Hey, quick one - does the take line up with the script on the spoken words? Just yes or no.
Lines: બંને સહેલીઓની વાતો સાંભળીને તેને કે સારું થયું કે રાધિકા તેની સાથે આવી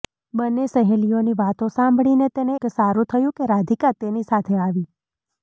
yes